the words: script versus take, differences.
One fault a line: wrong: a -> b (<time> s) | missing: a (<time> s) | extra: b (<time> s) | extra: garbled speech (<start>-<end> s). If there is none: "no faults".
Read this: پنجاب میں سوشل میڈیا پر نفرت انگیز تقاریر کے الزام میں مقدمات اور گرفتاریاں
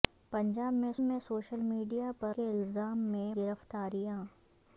extra: میں (1.0 s)
missing: نفرت انگیز تقاریر (2.3 s)
missing: مقدمات اور (3.3 s)